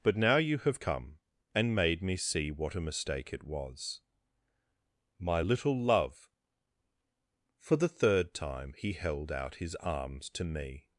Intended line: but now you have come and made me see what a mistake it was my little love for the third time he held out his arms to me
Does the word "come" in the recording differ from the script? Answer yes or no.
no